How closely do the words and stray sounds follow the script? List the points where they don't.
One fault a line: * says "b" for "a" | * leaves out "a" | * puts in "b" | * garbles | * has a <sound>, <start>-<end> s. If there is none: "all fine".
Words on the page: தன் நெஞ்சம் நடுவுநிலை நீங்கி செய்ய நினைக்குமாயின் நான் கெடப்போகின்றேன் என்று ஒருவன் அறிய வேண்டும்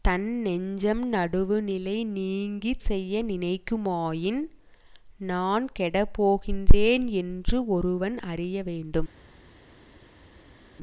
all fine